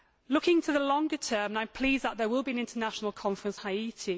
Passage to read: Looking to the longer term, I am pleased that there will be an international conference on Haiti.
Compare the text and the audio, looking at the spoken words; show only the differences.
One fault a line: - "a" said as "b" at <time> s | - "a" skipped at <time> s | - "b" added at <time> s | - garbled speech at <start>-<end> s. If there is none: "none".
- "on" skipped at 3.6 s